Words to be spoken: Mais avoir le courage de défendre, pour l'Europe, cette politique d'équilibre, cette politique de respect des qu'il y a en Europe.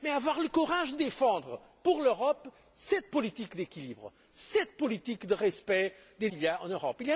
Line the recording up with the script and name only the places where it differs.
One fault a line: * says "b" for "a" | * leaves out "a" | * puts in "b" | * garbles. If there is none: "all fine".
all fine